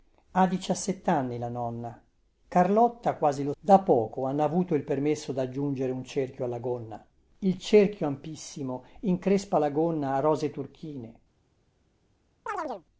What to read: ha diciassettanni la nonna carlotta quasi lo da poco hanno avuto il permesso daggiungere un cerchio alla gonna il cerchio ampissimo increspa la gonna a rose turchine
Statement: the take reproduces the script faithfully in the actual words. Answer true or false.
true